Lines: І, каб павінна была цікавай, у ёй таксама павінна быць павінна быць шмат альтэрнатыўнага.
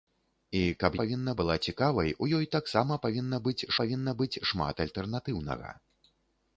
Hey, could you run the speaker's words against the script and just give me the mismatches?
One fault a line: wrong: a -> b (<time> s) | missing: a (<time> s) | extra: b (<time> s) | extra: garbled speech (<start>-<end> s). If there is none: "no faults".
no faults